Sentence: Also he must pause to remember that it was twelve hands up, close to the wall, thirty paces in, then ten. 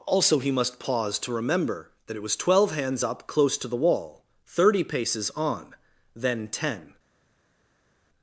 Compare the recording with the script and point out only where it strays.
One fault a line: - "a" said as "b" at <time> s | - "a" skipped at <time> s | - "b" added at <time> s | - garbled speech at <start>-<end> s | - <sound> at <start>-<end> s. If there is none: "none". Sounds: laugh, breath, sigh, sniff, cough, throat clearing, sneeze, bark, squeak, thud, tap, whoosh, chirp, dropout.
- "in" said as "on" at 5.3 s